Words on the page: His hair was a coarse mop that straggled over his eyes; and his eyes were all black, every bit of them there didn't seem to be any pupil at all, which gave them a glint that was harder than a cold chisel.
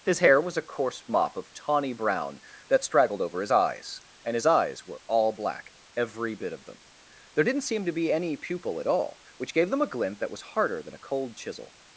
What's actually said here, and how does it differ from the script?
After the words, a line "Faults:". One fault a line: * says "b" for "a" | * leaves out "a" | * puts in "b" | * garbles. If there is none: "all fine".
His hair was a coarse mop of tawny brown that straggled over his eyes; and his eyes were all black, every bit of them there didn't seem to be any pupil at all, which gave them a glint that was harder than a cold chisel.
Faults:
* puts in "of tawny brown"